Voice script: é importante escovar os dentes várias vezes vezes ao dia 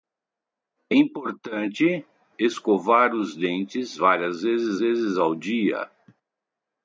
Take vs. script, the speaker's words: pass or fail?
pass